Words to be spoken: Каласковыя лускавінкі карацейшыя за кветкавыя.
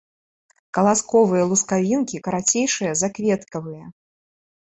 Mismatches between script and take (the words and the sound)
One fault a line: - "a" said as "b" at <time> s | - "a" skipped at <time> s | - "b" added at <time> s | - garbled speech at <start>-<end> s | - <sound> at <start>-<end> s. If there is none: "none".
none